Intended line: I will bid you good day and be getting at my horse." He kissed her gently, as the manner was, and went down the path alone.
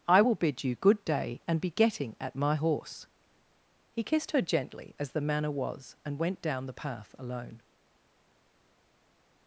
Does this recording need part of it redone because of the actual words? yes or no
no